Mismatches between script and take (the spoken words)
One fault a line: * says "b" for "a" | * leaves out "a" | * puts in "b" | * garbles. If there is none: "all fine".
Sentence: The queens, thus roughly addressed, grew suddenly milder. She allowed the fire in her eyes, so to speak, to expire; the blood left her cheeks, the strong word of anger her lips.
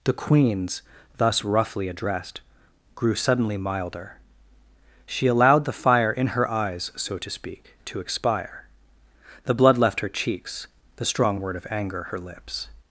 all fine